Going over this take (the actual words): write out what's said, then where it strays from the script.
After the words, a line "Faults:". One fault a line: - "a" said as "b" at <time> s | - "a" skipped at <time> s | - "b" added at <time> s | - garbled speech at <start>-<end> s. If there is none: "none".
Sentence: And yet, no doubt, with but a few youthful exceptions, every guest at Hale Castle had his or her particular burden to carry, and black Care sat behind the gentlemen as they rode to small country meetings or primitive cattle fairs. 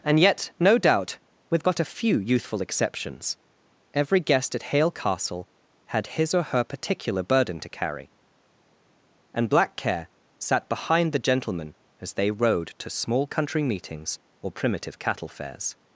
And yet, no doubt, with but a few youthful exceptions, every guest at Hale Castle had his or her particular burden to carry, and black Care sat behind the gentlemen as they rode to small country meetings or primitive cattle fairs.
Faults:
none